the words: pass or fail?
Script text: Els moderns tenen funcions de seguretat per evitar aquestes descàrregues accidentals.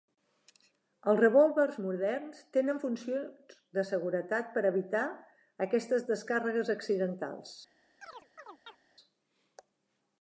fail